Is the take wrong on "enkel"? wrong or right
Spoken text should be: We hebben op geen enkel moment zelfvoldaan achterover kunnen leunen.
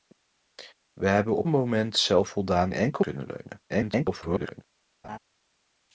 wrong